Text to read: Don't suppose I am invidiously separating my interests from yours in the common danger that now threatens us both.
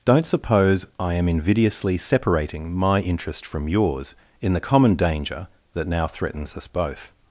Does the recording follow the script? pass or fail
fail